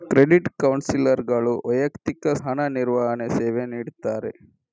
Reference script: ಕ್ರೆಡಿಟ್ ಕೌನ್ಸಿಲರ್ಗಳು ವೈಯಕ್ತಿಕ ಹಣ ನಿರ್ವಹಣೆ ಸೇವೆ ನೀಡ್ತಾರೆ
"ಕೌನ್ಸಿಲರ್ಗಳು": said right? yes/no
yes